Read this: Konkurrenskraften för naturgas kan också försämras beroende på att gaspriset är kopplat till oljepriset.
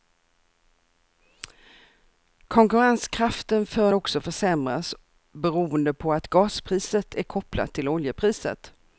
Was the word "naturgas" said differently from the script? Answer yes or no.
yes